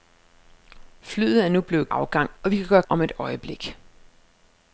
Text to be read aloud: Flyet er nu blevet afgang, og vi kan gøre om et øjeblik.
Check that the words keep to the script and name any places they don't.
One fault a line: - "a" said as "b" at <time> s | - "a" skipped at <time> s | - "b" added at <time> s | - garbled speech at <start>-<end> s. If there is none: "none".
none